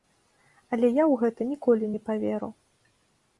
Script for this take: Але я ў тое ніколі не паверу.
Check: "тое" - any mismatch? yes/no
yes